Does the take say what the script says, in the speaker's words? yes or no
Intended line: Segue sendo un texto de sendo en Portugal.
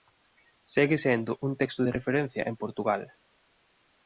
no